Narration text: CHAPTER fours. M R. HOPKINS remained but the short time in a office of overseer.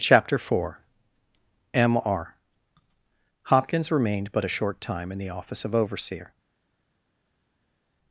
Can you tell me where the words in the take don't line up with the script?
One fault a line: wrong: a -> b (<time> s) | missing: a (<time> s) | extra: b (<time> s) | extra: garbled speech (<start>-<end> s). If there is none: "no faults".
wrong: fours -> four (0.4 s)
wrong: the -> a (4.4 s)
wrong: a -> the (5.2 s)